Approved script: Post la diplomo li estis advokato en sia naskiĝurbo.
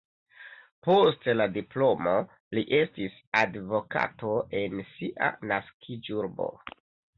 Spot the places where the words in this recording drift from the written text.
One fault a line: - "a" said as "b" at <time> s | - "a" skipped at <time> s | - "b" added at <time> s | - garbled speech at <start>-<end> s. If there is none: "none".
none